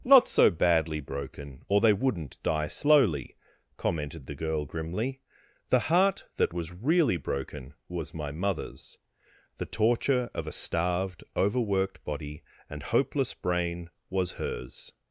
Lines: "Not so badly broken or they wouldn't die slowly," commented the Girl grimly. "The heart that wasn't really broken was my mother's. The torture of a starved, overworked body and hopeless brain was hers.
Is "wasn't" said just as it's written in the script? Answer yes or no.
no